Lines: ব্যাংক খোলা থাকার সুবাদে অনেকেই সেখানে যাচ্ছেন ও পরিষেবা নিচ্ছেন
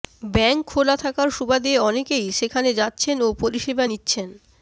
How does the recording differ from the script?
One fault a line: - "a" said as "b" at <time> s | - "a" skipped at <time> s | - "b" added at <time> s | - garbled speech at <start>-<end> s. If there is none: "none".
none